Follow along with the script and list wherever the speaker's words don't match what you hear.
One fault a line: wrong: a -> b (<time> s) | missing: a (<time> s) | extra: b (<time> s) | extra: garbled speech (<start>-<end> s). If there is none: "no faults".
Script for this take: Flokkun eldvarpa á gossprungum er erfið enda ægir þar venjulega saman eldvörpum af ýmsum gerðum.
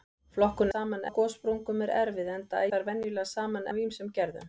wrong: eldvarpa -> saman (0.7 s)
missing: ægir (2.6 s)
missing: eldvörpum (3.7 s)